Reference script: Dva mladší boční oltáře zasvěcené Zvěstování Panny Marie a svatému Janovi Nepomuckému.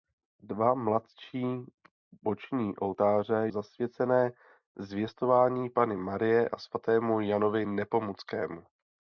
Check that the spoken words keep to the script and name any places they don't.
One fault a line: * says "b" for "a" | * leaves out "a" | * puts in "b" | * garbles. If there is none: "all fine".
all fine